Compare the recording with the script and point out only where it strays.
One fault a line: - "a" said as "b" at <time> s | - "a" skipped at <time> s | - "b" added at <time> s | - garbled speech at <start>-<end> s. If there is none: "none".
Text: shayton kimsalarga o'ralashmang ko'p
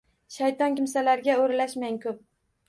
none